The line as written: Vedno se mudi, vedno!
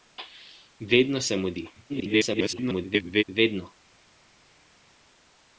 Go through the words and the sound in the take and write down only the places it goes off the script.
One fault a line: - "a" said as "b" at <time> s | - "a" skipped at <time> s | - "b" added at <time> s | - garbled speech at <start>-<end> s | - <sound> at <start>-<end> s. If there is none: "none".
- garbled speech at 1.9-3.2 s